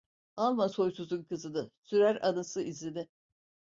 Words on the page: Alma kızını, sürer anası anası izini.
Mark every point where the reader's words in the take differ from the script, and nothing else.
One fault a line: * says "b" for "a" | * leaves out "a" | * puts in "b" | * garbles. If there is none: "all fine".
* puts in "soysuzun"
* leaves out "anası"